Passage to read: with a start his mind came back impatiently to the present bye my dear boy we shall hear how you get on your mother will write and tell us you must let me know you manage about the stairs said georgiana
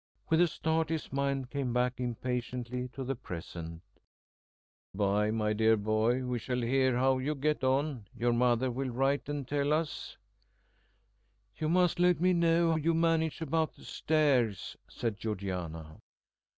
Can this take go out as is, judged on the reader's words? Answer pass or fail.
pass